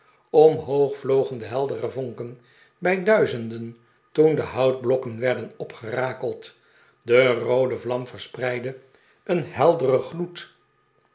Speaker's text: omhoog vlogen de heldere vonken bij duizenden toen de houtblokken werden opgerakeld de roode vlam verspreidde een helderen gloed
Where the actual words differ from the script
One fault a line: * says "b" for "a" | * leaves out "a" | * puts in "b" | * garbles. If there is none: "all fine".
all fine